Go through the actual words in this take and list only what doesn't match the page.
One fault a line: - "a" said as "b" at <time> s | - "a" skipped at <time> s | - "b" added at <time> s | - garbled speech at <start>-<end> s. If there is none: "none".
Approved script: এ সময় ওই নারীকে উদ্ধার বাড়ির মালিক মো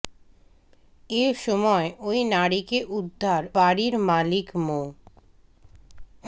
none